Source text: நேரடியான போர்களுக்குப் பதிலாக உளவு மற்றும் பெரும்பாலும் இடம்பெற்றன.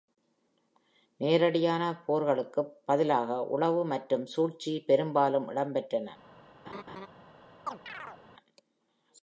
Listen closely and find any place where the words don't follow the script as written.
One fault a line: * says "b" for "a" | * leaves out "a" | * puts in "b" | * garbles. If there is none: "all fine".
* puts in "சூழ்ச்சி"